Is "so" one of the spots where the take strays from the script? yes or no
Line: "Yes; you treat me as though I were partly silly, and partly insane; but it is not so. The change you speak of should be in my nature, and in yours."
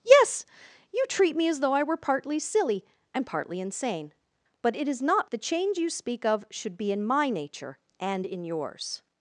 yes